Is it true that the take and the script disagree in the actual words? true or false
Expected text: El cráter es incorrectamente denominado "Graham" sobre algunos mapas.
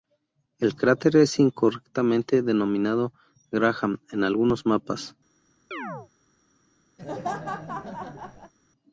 true